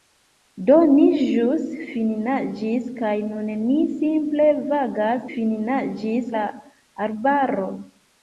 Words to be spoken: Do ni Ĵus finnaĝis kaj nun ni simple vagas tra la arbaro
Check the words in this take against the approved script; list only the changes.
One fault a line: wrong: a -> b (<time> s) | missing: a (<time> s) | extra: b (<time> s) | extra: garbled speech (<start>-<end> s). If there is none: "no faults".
wrong: tra -> finnaĝis (5.3 s)